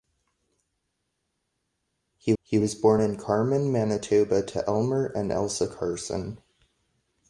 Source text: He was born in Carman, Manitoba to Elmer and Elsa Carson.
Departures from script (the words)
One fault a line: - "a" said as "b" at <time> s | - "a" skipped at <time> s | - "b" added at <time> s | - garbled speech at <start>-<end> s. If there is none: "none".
- "he" added at 2.4 s